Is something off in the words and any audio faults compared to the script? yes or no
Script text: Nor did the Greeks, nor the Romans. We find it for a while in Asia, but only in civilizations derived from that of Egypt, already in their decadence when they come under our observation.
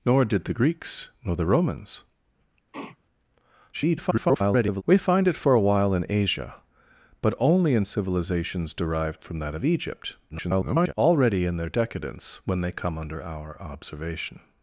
yes